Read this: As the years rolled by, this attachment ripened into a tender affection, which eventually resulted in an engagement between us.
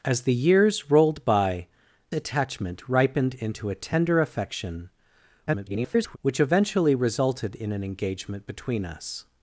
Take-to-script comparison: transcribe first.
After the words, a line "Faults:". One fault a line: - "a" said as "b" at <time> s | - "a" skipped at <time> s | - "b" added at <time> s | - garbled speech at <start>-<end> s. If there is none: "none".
As the years rolled by, attachment ripened into a tender affection, [garbled] which eventually resulted in an engagement between us.
Faults:
- "this" skipped at 1.7 s
- garbled speech at 5.5-6.2 s